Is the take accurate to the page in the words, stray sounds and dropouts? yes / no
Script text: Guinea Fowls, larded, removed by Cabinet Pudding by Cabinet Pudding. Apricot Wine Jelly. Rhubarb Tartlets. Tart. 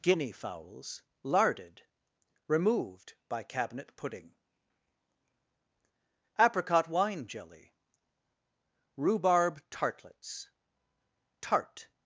no